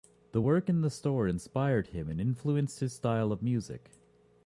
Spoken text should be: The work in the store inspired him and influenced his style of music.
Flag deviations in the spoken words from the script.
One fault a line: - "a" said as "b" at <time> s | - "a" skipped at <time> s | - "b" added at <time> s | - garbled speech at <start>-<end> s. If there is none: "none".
none